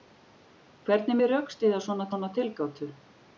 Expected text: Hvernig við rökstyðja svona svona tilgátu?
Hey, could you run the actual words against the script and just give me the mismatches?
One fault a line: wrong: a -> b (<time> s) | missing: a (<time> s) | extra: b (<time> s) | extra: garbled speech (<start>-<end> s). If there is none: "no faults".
no faults